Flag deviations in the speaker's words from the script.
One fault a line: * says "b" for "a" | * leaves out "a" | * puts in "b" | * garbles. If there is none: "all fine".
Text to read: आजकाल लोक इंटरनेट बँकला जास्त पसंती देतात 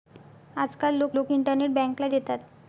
* puts in "लोक"
* leaves out "जास्त पसंती"